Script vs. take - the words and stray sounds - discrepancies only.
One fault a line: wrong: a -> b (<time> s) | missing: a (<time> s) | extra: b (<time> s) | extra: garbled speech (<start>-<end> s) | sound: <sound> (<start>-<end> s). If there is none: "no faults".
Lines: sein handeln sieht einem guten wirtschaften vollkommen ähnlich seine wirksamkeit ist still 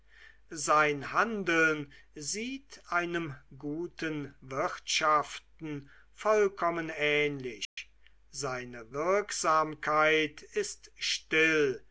sound: dropout (7.6-7.8 s)